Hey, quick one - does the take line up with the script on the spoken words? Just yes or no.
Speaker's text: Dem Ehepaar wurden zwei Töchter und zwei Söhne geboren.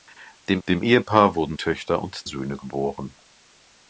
no